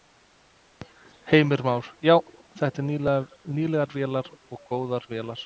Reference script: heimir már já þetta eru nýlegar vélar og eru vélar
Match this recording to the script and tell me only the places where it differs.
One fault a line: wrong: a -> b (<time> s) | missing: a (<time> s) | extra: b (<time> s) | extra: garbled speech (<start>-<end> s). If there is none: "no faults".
wrong: eru -> góðar (4.7 s)